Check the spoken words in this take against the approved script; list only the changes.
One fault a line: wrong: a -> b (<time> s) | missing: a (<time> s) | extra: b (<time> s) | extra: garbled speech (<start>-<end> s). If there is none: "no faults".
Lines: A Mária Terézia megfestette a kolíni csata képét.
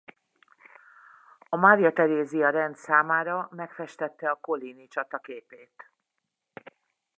extra: rend számára (2.5 s)